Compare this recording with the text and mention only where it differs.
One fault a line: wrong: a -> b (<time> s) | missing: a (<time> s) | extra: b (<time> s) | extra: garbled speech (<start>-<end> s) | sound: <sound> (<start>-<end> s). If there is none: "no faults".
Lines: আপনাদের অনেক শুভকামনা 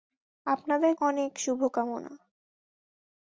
no faults